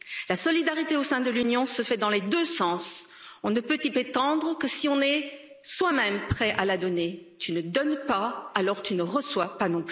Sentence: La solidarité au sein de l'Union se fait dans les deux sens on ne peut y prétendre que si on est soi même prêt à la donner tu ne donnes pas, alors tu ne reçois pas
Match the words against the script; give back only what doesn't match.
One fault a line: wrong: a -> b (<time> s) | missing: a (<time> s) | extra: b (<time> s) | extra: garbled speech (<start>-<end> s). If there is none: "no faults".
no faults